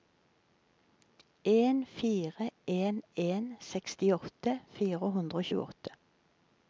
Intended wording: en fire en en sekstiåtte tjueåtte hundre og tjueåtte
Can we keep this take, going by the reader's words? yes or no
no